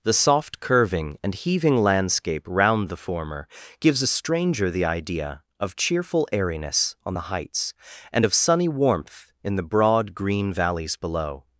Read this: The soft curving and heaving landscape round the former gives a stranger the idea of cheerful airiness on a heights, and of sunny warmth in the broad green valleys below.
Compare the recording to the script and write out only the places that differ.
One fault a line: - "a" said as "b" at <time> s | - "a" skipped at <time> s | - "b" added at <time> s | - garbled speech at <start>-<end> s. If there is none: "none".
- "a" said as "the" at 7.1 s